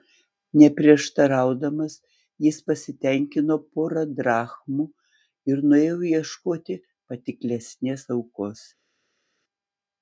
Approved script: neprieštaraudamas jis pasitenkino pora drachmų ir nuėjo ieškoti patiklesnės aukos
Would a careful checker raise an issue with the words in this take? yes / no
no